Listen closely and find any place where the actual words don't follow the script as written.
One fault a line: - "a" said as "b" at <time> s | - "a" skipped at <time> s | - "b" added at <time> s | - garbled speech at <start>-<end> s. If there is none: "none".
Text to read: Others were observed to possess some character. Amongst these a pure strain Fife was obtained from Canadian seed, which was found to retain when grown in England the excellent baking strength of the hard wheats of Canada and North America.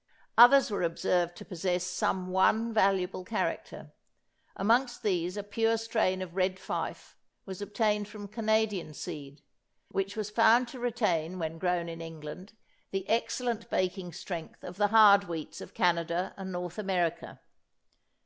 - "one valuable" added at 2.3 s
- "of Red" added at 6.2 s